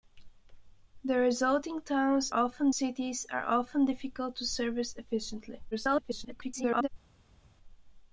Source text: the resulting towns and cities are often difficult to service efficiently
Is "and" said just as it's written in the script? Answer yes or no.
no